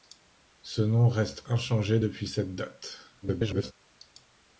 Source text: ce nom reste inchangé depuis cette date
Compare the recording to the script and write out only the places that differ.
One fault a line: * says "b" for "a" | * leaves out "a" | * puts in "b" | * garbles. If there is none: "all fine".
* garbles